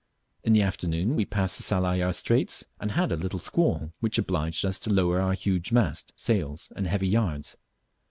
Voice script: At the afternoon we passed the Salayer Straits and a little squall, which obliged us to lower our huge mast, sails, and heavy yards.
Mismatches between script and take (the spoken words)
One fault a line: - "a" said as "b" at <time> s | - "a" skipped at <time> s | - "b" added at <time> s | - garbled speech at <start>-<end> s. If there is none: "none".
- "At" said as "In" at 0.4 s
- "had" added at 2.9 s